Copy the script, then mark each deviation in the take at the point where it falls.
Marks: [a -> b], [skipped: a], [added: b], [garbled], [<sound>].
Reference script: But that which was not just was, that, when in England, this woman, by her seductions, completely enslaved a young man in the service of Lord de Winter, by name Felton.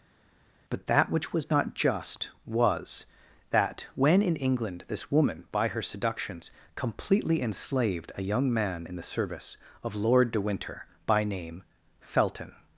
But that which was not just was, that, when in England, this woman, by her seductions, completely enslaved a young man in the service of Lord de Winter, by name Felton.